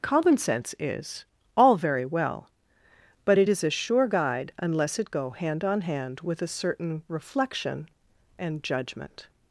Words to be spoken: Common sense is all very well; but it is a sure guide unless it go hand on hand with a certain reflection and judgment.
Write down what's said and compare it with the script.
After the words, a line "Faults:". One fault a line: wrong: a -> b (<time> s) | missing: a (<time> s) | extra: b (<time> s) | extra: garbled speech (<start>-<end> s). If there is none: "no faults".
Common sense is all very well; but it is a sure guide unless it go hand on hand with a certain reflection and judgment.
Faults:
no faults